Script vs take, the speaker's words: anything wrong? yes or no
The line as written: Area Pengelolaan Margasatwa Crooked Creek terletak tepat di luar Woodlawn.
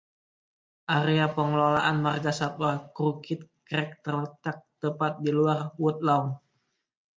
no